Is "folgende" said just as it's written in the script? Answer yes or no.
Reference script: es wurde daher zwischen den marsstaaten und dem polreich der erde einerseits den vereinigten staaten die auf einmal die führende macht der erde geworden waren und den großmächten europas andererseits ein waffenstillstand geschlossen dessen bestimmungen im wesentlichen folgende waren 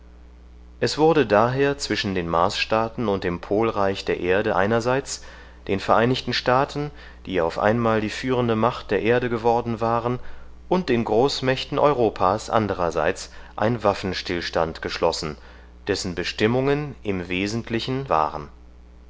no